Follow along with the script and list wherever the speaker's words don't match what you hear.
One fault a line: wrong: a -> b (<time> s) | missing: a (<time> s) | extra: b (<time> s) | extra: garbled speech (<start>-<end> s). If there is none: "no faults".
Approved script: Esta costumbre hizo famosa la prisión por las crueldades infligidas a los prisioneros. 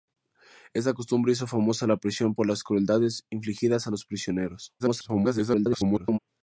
extra: garbled speech (4.8-6.2 s)